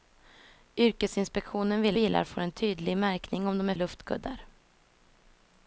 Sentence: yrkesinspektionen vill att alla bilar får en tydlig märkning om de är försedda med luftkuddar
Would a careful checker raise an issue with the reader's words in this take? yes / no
yes